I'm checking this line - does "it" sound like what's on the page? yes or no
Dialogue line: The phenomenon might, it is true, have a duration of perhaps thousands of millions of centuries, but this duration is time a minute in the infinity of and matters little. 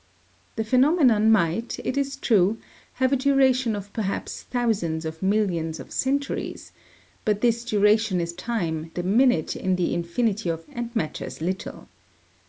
yes